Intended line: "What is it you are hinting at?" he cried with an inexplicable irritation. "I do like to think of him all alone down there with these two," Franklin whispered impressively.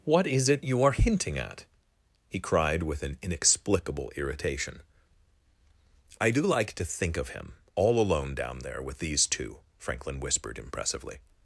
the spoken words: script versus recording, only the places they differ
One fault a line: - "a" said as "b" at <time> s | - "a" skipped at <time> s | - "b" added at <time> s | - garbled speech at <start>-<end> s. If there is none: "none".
none